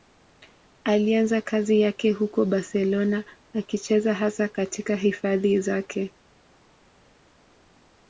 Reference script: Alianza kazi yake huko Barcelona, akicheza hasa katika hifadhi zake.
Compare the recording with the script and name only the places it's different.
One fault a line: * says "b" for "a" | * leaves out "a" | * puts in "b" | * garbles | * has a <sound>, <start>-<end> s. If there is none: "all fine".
all fine